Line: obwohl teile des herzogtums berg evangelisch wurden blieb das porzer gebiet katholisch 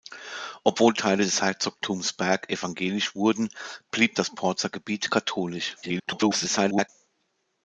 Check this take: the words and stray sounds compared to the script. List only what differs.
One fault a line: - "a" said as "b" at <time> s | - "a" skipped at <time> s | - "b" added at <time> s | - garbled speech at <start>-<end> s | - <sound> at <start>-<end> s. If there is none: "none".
- garbled speech at 5.8-6.9 s